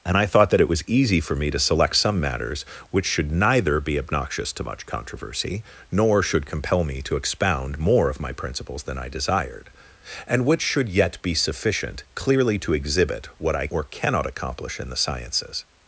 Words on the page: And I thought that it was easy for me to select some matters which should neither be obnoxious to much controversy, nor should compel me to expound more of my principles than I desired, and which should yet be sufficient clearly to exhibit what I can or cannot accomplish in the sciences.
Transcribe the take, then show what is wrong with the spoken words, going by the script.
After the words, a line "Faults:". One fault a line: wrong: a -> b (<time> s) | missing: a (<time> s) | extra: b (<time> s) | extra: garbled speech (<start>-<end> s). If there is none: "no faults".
And I thought that it was easy for me to select some matters which should neither be obnoxious to much controversy, nor should compel me to expound more of my principles than I desired, and which should yet be sufficient clearly to exhibit what I or cannot accomplish in the sciences.
Faults:
missing: can (13.7 s)